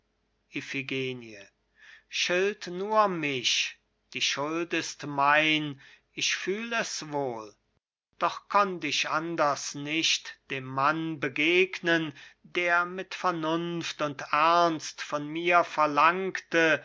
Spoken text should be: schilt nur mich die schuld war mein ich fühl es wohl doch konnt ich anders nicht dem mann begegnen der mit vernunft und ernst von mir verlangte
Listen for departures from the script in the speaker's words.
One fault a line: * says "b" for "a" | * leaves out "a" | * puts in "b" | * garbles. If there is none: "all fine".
* says "ist" for "war"